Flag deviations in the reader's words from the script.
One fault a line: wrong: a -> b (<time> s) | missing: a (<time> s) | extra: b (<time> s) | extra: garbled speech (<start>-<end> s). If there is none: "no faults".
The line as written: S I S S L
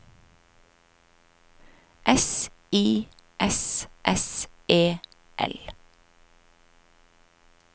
extra: E (4.7 s)